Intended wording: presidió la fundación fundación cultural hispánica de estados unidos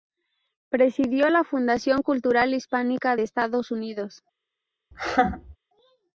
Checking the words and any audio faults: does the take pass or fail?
fail